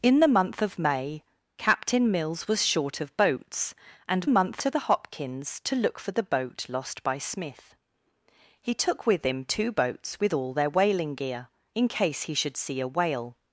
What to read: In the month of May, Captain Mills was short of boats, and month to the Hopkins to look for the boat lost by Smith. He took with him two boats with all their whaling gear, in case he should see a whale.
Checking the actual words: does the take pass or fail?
pass